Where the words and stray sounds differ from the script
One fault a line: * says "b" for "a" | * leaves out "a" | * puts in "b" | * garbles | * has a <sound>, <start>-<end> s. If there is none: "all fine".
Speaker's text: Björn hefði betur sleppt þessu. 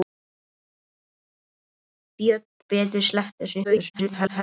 * leaves out "hefði"
* garbles